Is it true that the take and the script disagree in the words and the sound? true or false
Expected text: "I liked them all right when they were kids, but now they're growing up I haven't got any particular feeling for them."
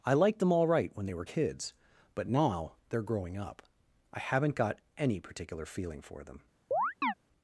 true